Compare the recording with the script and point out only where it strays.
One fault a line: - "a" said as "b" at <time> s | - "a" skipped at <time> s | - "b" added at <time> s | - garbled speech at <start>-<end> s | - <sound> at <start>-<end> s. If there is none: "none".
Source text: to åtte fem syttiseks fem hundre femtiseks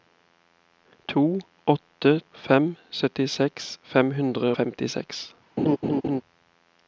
- laugh at 5.6-6.2 s